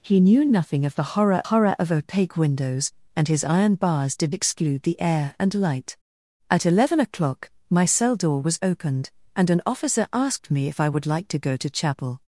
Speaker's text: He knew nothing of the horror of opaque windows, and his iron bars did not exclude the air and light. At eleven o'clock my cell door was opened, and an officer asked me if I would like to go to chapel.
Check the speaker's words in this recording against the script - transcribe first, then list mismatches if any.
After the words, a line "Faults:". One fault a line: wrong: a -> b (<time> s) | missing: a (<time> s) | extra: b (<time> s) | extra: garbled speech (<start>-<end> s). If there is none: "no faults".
He knew nothing of the horror horror of opaque windows, and his iron bars did exclude the air and light. At eleven o'clock my cell door was opened, and an officer asked me if I would like to go to chapel.
Faults:
extra: horror (1.5 s)
missing: not (4.4 s)